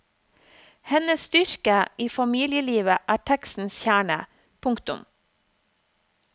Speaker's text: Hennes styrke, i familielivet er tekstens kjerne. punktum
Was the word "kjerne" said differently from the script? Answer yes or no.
no